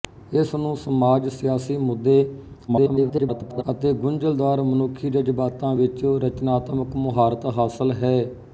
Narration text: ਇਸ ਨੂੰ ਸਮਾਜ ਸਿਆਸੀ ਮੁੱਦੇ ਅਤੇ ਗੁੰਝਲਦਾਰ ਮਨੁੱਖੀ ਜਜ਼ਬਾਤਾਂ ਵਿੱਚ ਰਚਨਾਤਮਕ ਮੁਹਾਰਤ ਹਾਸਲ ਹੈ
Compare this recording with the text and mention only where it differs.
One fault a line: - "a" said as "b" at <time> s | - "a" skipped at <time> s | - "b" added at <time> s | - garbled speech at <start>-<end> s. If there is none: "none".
- garbled speech at 2.7-3.6 s